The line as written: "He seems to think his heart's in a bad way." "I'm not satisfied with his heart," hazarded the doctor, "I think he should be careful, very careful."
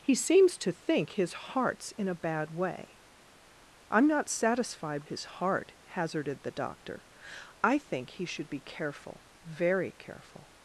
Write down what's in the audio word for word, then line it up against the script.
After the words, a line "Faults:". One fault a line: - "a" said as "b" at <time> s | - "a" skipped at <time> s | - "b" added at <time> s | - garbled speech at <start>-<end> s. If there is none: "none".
"He seems to think his heart's in a bad way." "I'm not satisfied his heart," hazarded the doctor, "I think he should be careful, very careful."
Faults:
- "with" skipped at 5.0 s